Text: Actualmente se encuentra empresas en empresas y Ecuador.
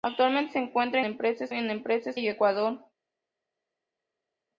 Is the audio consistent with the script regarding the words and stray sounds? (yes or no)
yes